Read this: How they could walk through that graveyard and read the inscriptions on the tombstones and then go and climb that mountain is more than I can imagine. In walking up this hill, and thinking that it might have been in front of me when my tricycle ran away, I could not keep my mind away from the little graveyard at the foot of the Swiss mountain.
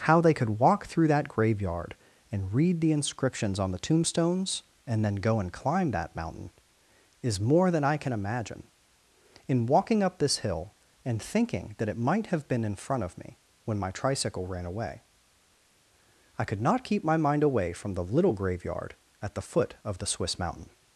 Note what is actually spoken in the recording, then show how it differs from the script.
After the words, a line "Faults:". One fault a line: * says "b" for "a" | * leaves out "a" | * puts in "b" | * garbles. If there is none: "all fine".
How they could walk through that graveyard and read the inscriptions on the tombstones and then go and climb that mountain is more than I can imagine. In walking up this hill, and thinking that it might have been in front of me when my tricycle ran away, I could not keep my mind away from the little graveyard at the foot of the Swiss mountain.
Faults:
all fine